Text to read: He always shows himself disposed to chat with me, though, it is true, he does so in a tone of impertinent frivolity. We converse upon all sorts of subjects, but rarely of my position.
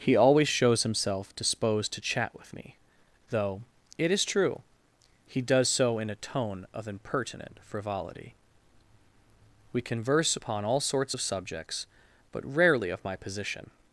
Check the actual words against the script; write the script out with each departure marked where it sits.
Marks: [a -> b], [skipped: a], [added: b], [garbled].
He always shows himself disposed to chat with me, though, it is true, he does so in a tone of impertinent frivolity. We converse upon all sorts of subjects, but rarely of my position.